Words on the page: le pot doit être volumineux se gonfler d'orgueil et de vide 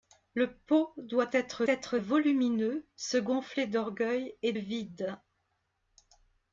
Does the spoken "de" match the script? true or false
false